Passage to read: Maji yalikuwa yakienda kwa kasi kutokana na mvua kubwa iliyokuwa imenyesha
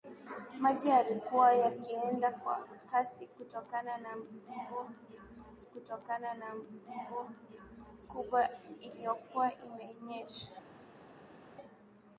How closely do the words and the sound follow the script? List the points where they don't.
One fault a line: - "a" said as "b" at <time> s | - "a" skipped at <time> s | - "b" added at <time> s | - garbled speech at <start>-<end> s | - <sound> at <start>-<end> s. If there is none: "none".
- "kutokana na mvua" added at 5.6 s